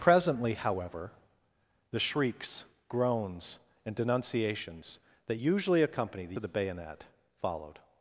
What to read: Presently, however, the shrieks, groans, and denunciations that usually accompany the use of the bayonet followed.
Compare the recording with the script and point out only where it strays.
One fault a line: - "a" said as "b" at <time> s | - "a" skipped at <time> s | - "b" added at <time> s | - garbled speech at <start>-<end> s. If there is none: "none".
- "use" skipped at 6.4 s